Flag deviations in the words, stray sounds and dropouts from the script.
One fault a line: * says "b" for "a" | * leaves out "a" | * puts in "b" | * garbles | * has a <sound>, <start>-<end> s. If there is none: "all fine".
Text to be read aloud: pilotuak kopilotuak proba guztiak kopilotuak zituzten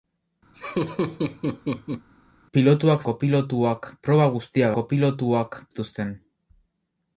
* has a laugh, 0.5-2.1 s